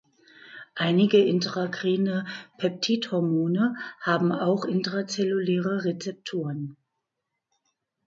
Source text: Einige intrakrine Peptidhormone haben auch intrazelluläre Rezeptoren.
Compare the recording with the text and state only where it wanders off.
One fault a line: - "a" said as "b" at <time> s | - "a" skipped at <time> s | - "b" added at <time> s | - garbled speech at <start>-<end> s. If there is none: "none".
none